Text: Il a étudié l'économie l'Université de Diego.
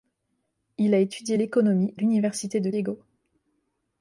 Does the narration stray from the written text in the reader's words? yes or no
no